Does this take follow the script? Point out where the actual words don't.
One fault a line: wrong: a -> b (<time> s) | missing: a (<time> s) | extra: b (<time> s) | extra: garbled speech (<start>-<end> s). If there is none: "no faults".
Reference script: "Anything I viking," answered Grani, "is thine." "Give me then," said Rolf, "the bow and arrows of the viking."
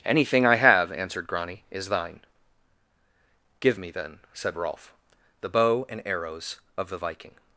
wrong: viking -> have (0.6 s)